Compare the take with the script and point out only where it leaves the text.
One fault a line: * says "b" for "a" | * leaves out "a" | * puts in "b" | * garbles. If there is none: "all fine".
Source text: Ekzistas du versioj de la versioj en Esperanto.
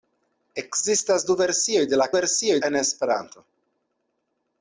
all fine